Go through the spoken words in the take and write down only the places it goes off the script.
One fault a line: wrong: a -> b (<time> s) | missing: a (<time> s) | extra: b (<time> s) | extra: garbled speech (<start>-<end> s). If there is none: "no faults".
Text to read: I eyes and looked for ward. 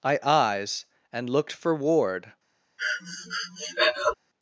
no faults